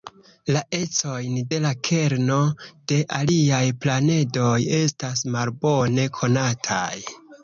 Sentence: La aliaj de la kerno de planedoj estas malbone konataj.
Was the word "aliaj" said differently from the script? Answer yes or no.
yes